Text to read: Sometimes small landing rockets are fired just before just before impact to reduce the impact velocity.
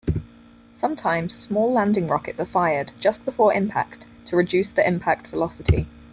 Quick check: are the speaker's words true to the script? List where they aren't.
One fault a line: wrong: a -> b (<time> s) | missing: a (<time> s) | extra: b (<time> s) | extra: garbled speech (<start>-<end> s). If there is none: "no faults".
missing: just before (3.5 s)